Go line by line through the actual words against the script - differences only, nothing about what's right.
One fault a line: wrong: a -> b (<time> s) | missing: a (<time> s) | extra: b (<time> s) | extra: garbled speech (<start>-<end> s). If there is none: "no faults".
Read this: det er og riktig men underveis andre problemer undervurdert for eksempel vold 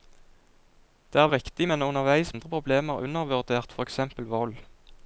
no faults